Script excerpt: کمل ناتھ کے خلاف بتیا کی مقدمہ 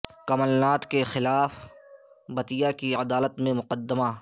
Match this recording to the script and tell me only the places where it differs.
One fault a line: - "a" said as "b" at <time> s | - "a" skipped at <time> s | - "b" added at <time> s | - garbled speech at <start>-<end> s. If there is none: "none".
- "عدالت میں" added at 2.9 s